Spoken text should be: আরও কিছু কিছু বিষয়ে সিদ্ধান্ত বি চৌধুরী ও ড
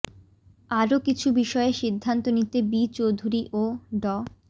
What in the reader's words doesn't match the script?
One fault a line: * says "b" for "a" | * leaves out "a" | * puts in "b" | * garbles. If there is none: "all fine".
* leaves out "কিছু"
* puts in "নিতে"